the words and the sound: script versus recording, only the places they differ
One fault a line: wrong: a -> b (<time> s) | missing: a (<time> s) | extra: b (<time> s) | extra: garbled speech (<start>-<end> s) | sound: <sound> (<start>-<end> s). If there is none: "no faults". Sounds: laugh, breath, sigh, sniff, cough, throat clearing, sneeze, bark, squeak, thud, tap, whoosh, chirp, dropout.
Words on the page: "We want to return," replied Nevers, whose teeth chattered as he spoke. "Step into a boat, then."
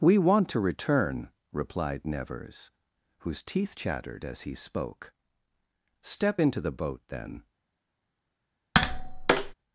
wrong: a -> the (6.6 s)
sound: tap (8.7-9.5 s)